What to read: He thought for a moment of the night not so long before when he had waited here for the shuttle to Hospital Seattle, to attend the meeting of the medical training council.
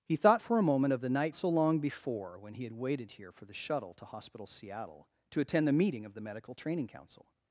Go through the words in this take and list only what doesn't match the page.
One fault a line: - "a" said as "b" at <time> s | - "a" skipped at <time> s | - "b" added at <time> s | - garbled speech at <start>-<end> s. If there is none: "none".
- "not" skipped at 1.4 s